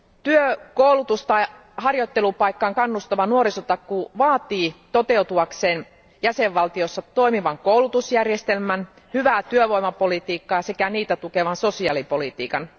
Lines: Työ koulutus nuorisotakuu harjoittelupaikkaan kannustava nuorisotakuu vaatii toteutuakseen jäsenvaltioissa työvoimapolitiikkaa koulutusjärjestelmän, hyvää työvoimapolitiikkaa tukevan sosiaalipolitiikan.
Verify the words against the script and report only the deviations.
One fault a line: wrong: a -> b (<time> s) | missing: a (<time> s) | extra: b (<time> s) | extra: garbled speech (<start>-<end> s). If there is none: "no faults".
wrong: nuorisotakuu -> tai (1.2 s)
wrong: työvoimapolitiikkaa -> toimivan (7.0 s)
extra: sekä niitä (10.6 s)